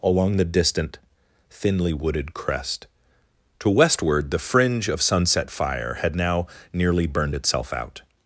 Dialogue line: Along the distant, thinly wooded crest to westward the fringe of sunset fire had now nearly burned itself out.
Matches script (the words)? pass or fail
pass